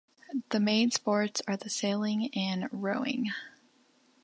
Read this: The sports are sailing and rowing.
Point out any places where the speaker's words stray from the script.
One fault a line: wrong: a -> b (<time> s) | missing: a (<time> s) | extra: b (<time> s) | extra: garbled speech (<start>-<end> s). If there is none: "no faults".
extra: main (0.6 s)
extra: the (1.6 s)